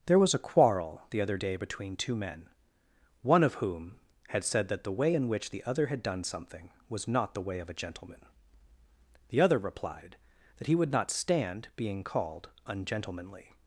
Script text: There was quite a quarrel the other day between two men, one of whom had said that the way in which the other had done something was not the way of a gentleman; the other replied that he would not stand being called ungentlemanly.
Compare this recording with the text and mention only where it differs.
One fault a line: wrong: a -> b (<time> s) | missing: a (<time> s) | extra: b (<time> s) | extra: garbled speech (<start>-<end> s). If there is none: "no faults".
missing: quite (0.3 s)